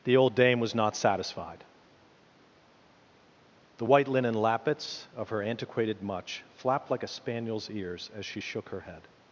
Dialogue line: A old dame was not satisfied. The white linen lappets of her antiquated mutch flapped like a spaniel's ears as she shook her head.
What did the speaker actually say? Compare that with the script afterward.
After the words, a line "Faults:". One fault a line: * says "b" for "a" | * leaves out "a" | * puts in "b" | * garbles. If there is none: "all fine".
The old dame was not satisfied. The white linen lappets of her antiquated mutch flapped like a spaniel's ears as she shook her head.
Faults:
* says "The" for "A"